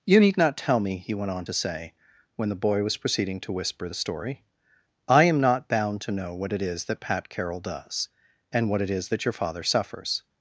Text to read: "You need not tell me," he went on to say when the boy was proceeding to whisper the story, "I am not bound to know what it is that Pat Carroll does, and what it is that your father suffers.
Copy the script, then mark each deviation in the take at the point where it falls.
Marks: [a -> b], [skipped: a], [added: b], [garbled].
"You need not tell me," he went on to say when the boy was proceeding to whisper the story, "I am not bound to know what it is that Pat Carroll does, and what it is that your father suffers.